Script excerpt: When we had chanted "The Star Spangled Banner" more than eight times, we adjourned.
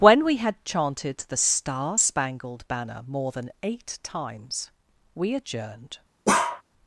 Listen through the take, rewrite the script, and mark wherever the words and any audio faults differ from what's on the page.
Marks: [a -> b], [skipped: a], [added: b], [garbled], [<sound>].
When we had chanted "The Star Spangled Banner" more than eight times, we adjourned. [bark]